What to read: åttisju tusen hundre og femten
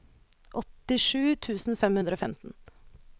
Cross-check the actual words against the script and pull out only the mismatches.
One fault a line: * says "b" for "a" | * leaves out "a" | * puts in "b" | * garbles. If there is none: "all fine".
* puts in "fem"